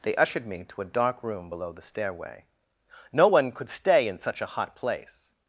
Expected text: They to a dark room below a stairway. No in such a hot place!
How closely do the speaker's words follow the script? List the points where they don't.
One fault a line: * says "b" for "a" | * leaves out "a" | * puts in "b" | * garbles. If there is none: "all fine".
* puts in "ushered me"
* says "the" for "a"
* puts in "one could stay"